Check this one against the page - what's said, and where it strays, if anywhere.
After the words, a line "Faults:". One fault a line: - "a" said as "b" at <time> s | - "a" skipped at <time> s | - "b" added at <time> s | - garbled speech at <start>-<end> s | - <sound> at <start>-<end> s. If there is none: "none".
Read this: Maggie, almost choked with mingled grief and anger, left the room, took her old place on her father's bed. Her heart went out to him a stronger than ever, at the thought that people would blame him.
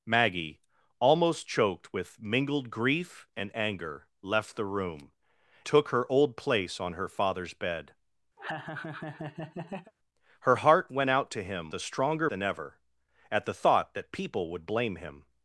Maggie, almost choked with mingled grief and anger, left the room, took her old place on her father's bed. Her heart went out to him a stronger than ever, at the thought that people would blame him.
Faults:
- laugh at 8.4-9.9 s